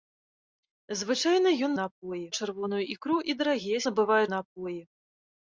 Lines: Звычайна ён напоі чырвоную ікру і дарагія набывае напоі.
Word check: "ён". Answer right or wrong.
right